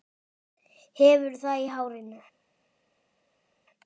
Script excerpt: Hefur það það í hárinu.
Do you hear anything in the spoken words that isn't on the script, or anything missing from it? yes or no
yes